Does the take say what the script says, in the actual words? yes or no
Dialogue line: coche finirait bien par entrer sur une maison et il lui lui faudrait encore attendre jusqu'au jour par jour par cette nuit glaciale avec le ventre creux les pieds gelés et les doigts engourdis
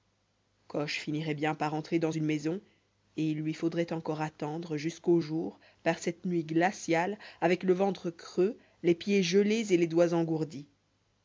no